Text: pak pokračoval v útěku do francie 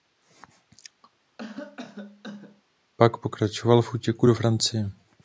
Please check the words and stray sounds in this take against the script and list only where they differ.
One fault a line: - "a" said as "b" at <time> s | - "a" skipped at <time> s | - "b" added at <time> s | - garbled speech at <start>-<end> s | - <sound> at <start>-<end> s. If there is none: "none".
- cough at 1.4-2.6 s